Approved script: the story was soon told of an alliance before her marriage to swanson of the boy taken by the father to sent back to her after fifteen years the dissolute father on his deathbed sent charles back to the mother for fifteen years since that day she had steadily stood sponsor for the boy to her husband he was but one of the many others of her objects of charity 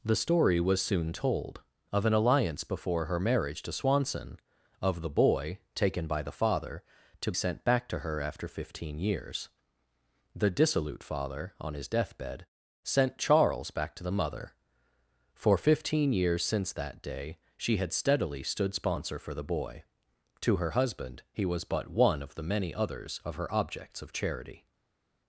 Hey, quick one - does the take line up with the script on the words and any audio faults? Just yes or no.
yes